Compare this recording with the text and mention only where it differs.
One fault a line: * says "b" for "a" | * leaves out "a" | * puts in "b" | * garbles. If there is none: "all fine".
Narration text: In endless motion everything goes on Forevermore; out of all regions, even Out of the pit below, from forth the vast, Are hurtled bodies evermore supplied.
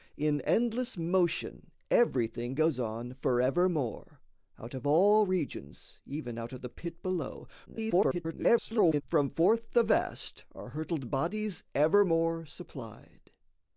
* garbles